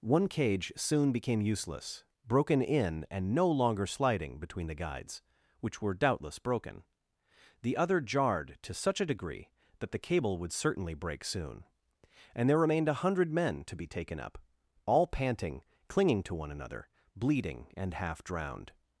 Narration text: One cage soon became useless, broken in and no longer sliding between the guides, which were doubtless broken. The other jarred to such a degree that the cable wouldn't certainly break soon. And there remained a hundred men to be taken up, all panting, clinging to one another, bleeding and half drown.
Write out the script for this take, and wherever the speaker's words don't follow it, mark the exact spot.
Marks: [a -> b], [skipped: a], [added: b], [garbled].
One cage soon became useless, broken in and no longer sliding between the guides, which were doubtless broken. The other jarred to such a degree that the cable [wouldn't -> would] certainly break soon. And there remained a hundred men to be taken up, all panting, clinging to one another, bleeding and half [drown. -> drowned]